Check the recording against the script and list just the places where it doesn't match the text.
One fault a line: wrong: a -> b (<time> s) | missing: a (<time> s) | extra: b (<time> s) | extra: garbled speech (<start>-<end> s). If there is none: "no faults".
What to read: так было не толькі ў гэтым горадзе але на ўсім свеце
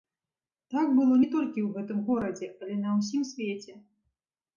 no faults